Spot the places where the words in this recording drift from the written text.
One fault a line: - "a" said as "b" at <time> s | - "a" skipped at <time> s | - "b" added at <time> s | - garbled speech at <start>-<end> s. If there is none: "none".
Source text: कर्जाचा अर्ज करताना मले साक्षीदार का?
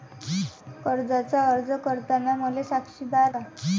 none